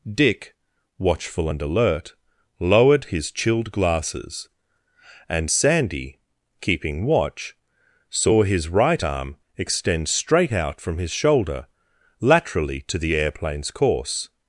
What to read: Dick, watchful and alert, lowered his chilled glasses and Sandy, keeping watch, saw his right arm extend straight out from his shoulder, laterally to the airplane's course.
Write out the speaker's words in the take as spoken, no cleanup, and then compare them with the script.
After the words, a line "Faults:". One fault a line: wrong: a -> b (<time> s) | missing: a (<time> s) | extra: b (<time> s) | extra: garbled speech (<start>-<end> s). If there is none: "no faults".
Dick, watchful and alert, lowered his chilled glasses and Sandy, keeping watch, saw his right arm extend straight out from his shoulder, laterally to the airplane's course.
Faults:
no faults